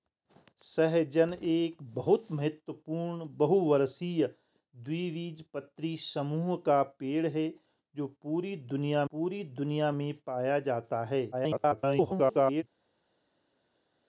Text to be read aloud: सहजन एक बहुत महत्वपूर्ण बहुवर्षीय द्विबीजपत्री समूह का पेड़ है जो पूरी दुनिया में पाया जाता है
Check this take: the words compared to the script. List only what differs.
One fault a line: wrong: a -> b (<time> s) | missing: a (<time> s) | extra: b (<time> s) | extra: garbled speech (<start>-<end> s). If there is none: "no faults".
extra: पूरी दुनिया (9.1 s)
extra: garbled speech (11.3-12.6 s)